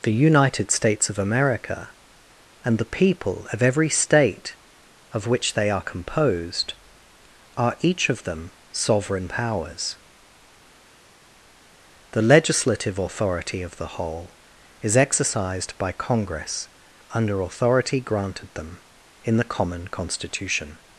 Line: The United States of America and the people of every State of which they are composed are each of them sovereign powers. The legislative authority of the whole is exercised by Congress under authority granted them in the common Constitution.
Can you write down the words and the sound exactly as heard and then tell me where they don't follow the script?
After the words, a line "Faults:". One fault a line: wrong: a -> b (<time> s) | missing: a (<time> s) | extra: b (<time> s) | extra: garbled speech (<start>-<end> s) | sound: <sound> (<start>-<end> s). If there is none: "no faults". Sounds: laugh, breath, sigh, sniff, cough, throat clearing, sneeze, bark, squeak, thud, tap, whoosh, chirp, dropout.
The United States of America and the people of every State of which they are composed are each of them sovereign powers. The legislative authority of the whole is exercised by Congress under authority granted them in the common Constitution.
Faults:
no faults